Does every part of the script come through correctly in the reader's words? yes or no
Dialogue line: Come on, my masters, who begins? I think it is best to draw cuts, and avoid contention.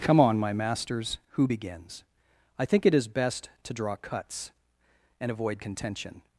yes